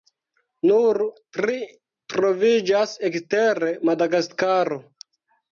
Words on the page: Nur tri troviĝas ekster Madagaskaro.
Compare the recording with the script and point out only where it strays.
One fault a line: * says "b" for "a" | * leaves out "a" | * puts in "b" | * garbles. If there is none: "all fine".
all fine